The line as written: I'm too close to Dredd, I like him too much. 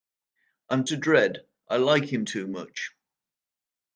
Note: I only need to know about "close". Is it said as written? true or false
false